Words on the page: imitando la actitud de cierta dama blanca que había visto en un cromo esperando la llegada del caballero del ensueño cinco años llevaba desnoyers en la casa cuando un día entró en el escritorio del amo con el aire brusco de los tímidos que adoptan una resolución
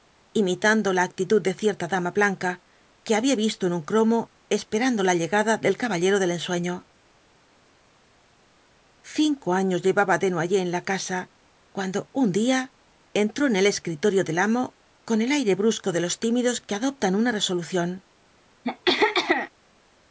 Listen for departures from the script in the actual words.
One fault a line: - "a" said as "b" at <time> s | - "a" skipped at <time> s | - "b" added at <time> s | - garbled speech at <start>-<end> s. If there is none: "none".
none